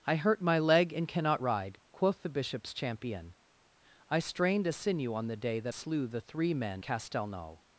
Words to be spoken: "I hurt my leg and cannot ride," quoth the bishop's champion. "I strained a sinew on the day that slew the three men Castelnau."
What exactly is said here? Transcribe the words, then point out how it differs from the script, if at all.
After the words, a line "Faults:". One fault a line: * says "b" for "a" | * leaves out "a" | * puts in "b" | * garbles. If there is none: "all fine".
"I hurt my leg and cannot ride," quoth the bishop's champion. "I strained a sinew on the day that slew the three men Castelnau."
Faults:
all fine